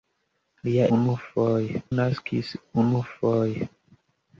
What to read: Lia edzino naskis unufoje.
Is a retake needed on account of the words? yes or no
yes